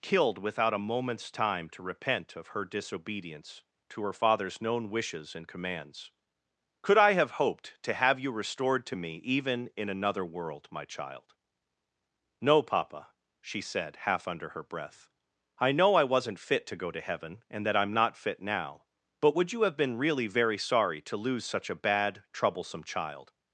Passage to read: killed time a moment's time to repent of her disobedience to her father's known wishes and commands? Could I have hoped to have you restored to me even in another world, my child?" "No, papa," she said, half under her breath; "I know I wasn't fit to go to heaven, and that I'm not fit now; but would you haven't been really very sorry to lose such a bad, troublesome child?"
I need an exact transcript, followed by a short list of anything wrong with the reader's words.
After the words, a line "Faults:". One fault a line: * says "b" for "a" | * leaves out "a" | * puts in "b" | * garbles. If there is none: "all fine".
killed without a moment's time to repent of her disobedience to her father's known wishes and commands? Could I have hoped to have you restored to me even in another world, my child?" "No, papa," she said, half under her breath; "I know I wasn't fit to go to heaven, and that I'm not fit now; but would you have been really very sorry to lose such a bad, troublesome child?"
Faults:
* says "without" for "time"
* says "have" for "haven't"